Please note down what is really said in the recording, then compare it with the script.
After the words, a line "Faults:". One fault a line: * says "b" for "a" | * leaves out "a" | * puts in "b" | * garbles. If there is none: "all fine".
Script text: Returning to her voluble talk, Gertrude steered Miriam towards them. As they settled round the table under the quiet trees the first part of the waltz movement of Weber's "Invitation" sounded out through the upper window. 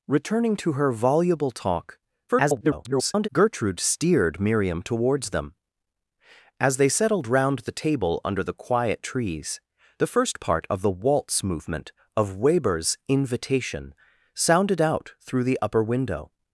Returning to her voluble talk, [garbled] Gertrude steered Miriam towards them. As they settled round the table under the quiet trees the first part of the waltz movement of Weber's "Invitation" sounded out through the upper window.
Faults:
* garbles